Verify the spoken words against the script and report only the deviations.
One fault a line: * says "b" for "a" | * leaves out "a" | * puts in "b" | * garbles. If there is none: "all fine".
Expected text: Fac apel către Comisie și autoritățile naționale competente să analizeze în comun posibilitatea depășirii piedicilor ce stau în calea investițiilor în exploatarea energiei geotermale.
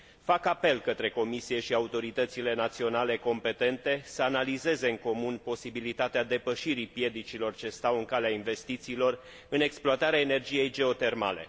all fine